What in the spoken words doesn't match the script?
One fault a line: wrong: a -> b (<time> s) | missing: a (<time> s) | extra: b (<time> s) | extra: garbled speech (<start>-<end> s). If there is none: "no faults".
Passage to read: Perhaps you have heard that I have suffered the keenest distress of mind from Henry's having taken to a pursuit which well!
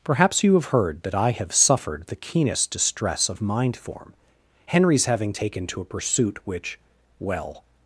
wrong: from -> form (3.8 s)